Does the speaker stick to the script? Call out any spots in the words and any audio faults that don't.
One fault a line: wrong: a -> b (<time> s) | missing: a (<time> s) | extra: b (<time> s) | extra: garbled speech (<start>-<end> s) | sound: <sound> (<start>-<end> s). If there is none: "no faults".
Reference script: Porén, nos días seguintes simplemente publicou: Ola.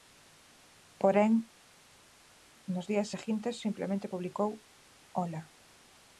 no faults